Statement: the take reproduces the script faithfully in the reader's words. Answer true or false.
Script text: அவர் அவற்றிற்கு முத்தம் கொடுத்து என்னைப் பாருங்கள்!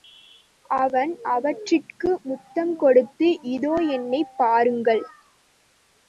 false